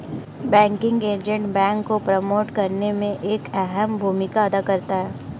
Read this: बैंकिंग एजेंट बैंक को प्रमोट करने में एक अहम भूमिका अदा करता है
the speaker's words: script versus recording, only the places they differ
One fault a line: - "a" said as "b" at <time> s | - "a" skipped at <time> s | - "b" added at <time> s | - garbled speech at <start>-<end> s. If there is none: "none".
none